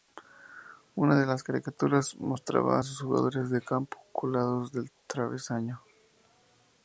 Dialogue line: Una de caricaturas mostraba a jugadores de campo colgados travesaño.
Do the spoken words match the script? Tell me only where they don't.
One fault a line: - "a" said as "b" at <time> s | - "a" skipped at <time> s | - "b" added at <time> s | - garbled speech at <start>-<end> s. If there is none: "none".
- "las" added at 1.3 s
- "sus" added at 2.8 s
- "del" added at 4.7 s